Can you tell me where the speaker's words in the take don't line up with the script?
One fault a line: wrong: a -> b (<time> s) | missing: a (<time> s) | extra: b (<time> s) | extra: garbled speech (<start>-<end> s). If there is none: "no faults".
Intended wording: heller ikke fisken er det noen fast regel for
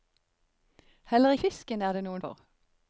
missing: ikke (1.3 s)
missing: fast regel (2.2 s)